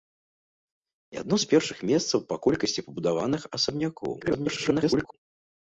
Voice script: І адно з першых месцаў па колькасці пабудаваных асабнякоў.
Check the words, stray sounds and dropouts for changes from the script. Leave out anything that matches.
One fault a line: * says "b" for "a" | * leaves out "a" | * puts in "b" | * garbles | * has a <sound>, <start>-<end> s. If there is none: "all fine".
* garbles